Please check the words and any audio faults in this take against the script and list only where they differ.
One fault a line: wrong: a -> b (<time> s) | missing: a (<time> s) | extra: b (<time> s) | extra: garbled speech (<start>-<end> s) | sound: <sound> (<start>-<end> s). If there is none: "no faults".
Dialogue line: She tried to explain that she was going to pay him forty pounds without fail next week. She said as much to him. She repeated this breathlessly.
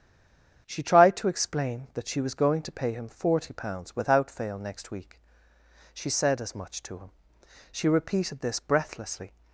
no faults